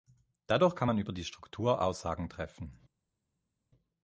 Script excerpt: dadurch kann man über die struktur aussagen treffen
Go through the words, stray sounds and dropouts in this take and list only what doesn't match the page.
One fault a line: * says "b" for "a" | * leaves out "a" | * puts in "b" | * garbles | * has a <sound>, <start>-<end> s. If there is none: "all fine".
all fine